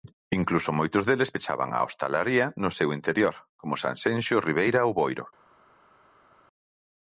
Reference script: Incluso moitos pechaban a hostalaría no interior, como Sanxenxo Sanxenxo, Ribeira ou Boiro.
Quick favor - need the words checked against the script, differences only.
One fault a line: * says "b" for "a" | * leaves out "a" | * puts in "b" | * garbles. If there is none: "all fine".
* puts in "deles"
* puts in "seu"
* leaves out "Sanxenxo"